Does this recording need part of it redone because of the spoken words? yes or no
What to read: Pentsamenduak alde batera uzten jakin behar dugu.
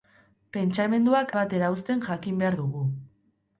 yes